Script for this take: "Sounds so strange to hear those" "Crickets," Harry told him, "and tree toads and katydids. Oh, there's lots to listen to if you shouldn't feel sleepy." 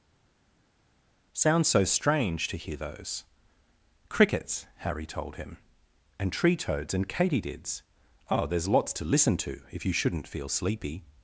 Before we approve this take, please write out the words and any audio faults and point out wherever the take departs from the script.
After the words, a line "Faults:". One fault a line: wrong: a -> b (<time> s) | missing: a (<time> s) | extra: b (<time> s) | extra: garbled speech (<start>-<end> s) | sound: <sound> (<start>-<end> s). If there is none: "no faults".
"Sounds so strange to hear those" "Crickets," Harry told him, "and tree toads and katydids. Oh, there's lots to listen to if you shouldn't feel sleepy."
Faults:
no faults